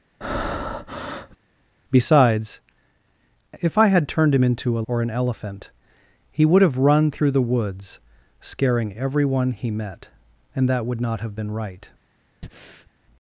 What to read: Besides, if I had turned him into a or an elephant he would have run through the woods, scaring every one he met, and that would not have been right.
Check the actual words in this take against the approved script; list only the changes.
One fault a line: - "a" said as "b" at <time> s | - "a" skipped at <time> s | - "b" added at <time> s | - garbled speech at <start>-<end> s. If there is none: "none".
none